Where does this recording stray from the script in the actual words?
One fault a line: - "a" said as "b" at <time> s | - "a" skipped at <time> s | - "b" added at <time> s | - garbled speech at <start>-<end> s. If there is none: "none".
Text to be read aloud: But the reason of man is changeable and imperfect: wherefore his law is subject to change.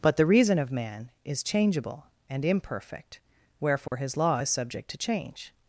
none